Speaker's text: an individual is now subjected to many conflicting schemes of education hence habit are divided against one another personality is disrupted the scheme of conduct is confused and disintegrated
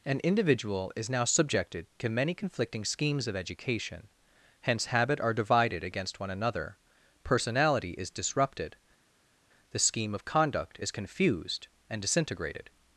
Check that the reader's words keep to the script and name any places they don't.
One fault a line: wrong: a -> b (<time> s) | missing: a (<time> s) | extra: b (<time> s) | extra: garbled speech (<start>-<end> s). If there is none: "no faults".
no faults